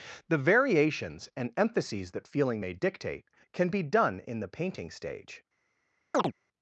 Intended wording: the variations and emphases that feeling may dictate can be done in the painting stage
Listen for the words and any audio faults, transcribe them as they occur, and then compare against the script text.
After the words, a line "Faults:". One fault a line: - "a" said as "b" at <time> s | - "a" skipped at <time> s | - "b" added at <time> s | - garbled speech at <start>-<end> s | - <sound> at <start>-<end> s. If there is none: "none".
the variations and emphases that feeling may dictate can be done in the painting stage
Faults:
- chirp at 6.1-6.3 s